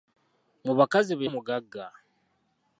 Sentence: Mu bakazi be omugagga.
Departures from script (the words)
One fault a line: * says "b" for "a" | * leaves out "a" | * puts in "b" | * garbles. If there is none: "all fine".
all fine